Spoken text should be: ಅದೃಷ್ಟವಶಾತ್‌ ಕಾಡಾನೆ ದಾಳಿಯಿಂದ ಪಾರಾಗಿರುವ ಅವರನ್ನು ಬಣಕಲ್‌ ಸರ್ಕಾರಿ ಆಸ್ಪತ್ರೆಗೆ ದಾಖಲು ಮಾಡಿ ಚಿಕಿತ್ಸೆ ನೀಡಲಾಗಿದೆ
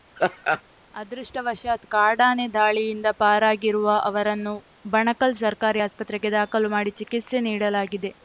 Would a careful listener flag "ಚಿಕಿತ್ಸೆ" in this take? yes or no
no